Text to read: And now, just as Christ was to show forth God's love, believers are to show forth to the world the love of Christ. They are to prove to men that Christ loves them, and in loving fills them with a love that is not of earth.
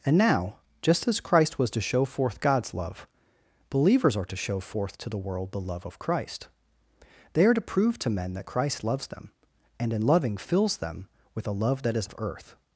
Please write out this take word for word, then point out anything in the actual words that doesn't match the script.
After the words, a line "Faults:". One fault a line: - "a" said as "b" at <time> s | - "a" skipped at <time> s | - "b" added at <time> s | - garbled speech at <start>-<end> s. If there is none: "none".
And now, just as Christ was to show forth God's love, believers are to show forth to the world the love of Christ. They are to prove to men that Christ loves them, and in loving fills them with a love that is of earth.
Faults:
- "not" skipped at 12.1 s